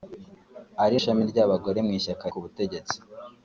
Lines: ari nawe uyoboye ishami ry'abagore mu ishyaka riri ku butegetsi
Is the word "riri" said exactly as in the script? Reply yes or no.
no